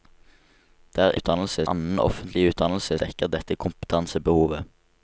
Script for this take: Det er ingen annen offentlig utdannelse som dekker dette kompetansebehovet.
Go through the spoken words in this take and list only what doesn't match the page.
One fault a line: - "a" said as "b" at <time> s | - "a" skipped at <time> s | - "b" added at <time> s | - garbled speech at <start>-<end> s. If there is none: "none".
- "ingen" said as "utdannelse" at 1.2 s
- "som" skipped at 3.0 s